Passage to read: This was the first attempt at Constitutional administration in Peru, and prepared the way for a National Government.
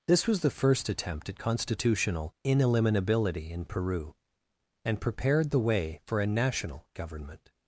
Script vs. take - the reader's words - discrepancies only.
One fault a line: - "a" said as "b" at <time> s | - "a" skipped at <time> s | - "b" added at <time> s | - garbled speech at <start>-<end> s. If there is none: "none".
- "administration" said as "ineliminability" at 2.4 s